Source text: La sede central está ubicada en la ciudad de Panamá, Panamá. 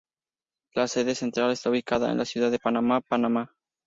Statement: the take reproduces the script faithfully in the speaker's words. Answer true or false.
true